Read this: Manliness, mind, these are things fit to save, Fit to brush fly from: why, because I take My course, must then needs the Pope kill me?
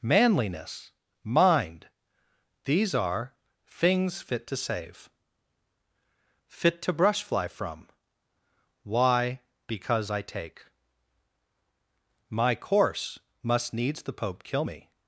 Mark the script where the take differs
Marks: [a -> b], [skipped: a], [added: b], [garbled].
Manliness, mind, these are things fit to save, Fit to brush fly from: why, because I take My course, must [skipped: then] needs the Pope kill me?